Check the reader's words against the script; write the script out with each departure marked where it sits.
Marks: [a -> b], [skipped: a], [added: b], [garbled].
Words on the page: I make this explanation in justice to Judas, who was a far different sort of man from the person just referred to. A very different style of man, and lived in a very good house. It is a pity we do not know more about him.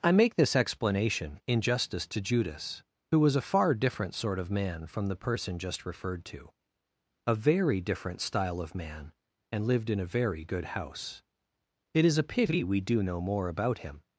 I make this explanation in justice to Judas, who was a far different sort of man from the person just referred to. A very different style of man, and lived in a very good house. It is a pity we do [skipped: not] know more about him.